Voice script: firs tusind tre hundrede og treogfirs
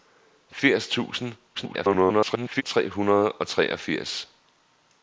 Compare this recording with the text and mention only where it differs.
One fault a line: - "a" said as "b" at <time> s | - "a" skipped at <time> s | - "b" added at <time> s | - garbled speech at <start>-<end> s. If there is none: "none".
- garbled speech at 1.5-2.6 s